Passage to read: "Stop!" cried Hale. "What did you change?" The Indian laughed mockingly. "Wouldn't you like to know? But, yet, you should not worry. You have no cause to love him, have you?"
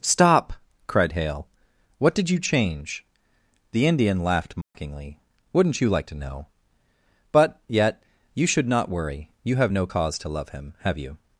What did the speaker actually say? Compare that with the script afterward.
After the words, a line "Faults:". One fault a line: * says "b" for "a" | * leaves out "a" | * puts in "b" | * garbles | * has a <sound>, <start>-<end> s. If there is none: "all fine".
"Stop!" cried Hale. "What did you change?" The Indian laughed mockingly. "Wouldn't you like to know? But, yet, you should not worry. You have no cause to love him, have you?"
Faults:
* has a dropout, 4.6-4.7 s